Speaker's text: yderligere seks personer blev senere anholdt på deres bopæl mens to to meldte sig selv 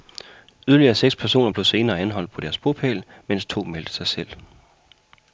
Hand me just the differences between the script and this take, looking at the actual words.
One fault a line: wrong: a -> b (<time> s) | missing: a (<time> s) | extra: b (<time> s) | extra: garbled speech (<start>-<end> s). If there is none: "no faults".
missing: to (3.6 s)